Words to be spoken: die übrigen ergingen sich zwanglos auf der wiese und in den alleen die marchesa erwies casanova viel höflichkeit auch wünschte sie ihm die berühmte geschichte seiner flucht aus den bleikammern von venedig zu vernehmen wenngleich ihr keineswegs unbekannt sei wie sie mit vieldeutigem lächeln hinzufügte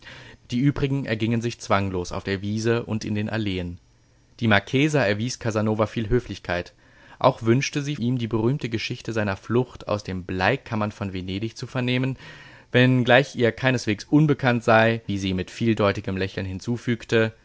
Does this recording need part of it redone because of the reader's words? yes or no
no